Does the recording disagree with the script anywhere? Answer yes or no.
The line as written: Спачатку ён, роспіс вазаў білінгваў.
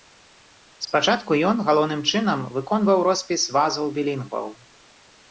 yes